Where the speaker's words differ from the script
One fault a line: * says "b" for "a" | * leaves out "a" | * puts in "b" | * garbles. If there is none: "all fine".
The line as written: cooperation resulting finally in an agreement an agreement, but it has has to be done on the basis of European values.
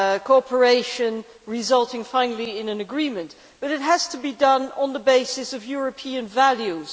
* leaves out "an agreement"
* leaves out "has"